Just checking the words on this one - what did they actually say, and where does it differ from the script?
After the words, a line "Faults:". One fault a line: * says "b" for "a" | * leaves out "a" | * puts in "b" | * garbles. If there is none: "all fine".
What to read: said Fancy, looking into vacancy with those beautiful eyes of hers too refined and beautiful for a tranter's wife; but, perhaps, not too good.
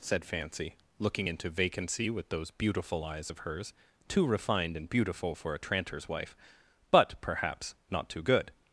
said Fancy, looking into vacancy with those beautiful eyes of hers too refined and beautiful for a tranter's wife; but, perhaps, not too good.
Faults:
all fine